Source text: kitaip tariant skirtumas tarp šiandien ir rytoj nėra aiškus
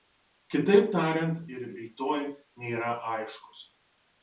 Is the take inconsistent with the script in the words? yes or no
yes